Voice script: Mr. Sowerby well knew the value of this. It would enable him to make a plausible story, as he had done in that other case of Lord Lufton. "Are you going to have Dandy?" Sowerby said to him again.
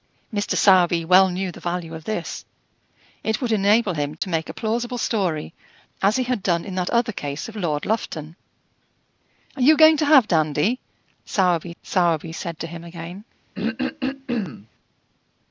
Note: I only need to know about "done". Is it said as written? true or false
true